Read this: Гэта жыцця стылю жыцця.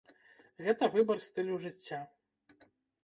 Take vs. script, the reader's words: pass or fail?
fail